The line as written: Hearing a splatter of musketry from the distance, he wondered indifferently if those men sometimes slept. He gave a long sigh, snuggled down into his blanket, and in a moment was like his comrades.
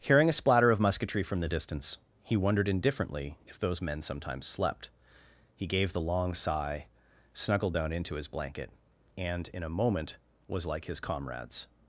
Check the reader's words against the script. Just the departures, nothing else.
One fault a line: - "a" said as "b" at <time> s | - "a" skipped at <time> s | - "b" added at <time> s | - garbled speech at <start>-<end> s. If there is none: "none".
- "a" said as "the" at 5.9 s